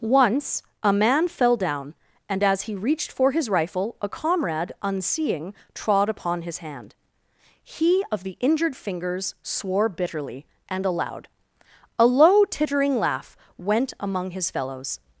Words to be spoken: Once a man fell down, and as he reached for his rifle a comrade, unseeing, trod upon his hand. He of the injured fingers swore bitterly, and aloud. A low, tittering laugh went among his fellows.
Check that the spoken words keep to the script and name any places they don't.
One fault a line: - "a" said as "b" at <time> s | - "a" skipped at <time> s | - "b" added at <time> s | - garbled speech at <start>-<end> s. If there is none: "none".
none